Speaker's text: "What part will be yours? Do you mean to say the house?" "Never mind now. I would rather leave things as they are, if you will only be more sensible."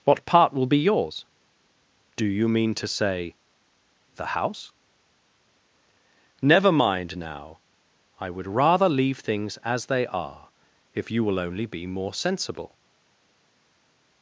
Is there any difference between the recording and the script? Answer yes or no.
no